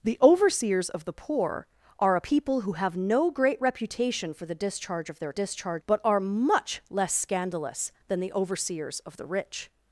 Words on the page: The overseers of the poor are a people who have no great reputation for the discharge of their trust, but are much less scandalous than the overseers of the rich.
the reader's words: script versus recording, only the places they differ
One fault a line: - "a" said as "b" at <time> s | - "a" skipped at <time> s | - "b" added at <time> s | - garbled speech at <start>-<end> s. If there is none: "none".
- "trust" said as "discharge" at 5.3 s